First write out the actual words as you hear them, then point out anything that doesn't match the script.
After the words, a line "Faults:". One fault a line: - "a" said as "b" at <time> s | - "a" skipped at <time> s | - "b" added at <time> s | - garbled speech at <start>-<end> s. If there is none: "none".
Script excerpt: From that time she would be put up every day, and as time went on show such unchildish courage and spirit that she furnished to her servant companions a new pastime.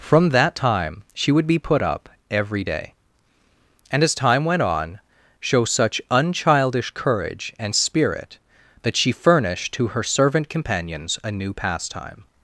From that time she would be put up every day, and as time went on show such unchildish courage and spirit that she furnished to her servant companions a new pastime.
Faults:
none